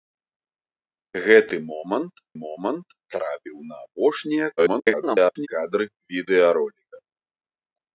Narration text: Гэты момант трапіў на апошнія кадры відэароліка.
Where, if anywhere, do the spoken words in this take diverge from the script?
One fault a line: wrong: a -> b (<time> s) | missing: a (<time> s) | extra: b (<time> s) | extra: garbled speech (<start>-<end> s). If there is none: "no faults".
extra: момант (2.4 s)
extra: garbled speech (4.6-5.5 s)